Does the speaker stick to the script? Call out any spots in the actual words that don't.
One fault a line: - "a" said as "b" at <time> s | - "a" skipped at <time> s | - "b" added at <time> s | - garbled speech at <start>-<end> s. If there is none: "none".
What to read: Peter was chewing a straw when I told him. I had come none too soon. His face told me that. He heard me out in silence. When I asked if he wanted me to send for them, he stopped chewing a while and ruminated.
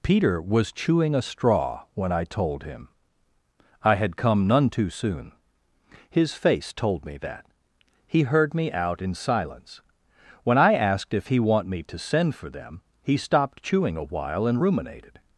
- "wanted" said as "want" at 11.4 s